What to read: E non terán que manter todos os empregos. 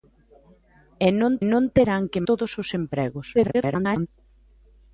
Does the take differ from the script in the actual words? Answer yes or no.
yes